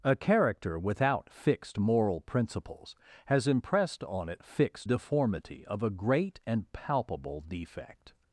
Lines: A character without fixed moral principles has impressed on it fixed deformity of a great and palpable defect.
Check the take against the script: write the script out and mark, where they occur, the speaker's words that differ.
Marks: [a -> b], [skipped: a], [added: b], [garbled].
A character without fixed moral principles has impressed on it fixed deformity of a great and palpable defect.